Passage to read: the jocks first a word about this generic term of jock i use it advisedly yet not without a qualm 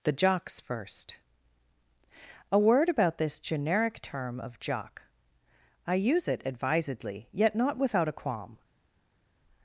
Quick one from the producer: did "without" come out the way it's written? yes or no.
yes